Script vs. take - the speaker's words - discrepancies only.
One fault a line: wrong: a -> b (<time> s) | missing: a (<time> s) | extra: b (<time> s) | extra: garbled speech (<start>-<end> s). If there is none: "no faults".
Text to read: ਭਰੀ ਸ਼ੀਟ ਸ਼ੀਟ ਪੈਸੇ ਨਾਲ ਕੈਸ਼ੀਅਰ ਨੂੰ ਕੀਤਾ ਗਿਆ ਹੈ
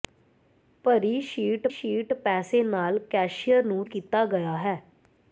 no faults